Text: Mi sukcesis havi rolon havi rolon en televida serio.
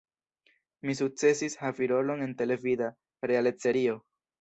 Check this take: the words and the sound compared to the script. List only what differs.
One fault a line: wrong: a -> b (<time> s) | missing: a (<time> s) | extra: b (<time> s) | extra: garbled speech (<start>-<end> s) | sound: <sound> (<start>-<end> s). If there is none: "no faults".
missing: havi rolon (2.3 s)
extra: realec (3.3 s)